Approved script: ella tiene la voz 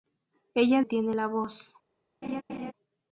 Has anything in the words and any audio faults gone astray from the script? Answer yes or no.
yes